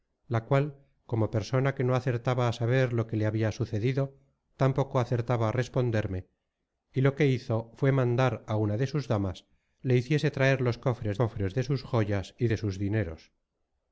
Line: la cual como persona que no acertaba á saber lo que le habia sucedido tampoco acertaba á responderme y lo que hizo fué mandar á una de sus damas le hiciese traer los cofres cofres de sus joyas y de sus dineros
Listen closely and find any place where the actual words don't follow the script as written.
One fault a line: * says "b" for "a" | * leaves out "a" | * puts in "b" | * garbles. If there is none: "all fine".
all fine